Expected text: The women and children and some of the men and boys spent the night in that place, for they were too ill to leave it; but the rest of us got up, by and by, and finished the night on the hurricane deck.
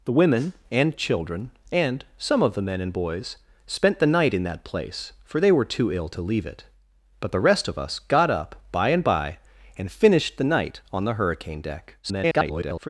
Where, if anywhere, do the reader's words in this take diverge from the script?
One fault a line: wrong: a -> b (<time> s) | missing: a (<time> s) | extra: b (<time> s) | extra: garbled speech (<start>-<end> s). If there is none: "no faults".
extra: garbled speech (12.0-12.9 s)